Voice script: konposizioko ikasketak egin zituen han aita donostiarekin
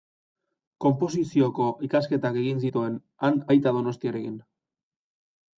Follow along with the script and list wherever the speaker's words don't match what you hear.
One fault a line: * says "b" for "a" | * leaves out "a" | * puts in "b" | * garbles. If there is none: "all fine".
all fine